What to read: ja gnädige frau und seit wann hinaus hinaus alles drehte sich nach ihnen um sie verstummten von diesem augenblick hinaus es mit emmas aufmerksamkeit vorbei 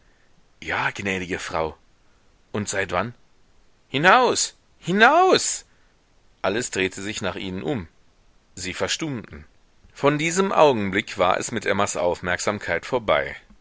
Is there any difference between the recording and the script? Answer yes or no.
yes